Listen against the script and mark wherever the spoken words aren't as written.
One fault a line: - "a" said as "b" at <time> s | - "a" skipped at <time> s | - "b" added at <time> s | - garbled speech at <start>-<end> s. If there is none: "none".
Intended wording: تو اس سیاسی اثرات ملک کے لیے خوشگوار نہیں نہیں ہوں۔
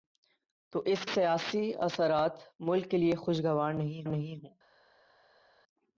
none